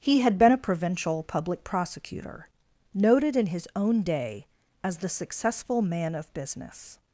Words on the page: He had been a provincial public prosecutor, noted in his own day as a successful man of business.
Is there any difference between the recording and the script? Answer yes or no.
yes